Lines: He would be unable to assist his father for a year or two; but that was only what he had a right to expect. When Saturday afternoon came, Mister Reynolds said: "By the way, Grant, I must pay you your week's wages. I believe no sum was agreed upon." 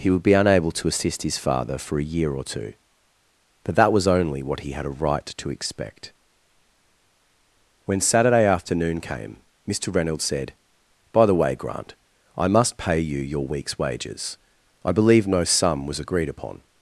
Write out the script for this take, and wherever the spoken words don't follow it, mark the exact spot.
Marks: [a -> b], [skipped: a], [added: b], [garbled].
He would be unable to assist his father for a year or two; but that was only what he had a right to expect. When Saturday afternoon came, Mister Reynolds said: "By the way, Grant, I must pay you your week's wages. I believe no sum was agreed upon."